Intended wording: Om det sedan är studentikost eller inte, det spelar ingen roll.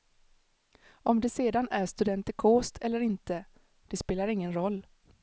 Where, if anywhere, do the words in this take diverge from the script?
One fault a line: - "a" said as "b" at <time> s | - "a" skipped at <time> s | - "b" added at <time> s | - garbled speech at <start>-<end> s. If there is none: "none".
none